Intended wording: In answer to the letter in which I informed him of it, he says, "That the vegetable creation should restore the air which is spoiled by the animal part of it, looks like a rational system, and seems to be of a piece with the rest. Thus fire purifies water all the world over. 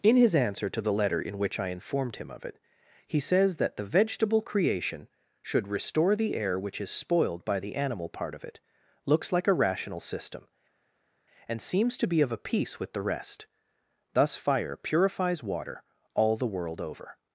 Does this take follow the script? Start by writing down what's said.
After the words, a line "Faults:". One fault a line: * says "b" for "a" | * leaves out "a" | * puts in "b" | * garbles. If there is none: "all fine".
In his answer to the letter in which I informed him of it, he says, "That the vegetable creation should restore the air which is spoiled by the animal part of it, looks like a rational system, and seems to be of a piece with the rest. Thus fire purifies water all the world over.
Faults:
* puts in "his"